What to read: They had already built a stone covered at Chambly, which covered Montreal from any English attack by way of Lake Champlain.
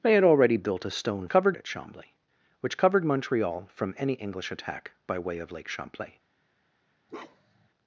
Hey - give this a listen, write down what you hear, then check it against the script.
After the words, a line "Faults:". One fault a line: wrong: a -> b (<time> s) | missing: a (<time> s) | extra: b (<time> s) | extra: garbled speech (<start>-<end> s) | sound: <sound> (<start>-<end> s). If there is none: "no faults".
They had already built a stone covered at Chambly, which covered Montreal from any English attack by way of Lake Champlain.
Faults:
sound: bark (7.1-7.7 s)